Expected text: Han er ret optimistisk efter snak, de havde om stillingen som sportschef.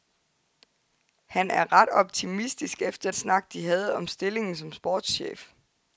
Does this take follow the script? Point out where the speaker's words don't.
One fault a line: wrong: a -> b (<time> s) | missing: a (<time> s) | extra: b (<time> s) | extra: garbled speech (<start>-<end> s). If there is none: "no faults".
no faults